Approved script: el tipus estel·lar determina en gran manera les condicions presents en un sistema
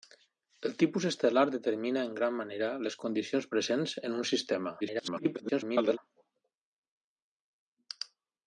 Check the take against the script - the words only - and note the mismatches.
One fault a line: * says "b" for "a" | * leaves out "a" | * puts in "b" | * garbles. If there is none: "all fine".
* garbles